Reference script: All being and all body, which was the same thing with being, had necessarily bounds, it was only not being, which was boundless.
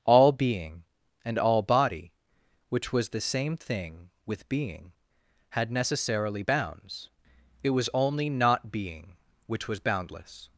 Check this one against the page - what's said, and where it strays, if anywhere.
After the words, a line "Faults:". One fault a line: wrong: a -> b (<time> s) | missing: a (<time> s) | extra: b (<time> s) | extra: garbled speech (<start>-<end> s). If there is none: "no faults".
All being and all body, which was the same thing with being, had necessarily bounds, it was only not being, which was boundless.
Faults:
no faults